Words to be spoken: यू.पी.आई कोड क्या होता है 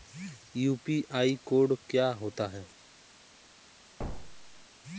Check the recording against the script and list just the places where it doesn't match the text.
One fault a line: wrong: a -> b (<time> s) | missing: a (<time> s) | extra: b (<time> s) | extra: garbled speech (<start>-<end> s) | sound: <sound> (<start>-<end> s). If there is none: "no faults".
sound: thud (4.0-4.7 s)